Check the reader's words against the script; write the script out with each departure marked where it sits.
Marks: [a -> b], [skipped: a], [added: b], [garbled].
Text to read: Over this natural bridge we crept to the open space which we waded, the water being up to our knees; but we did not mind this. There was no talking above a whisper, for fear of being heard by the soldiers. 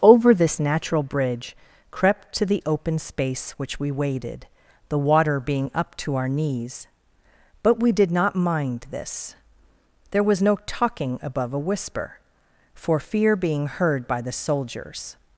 Over this natural bridge [skipped: we] crept to the open space which we waded, the water being up to our knees; but we did not mind this. There was no talking above a whisper, for fear [skipped: of] being heard by the soldiers.